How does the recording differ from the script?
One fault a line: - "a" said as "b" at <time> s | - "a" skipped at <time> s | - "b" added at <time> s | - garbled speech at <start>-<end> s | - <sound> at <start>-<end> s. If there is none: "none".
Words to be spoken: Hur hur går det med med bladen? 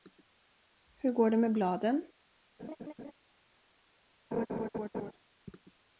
- "hur" skipped at 1.1 s
- "med" skipped at 1.5 s
- laugh at 2.6-3.1 s
- laugh at 4.3-5.1 s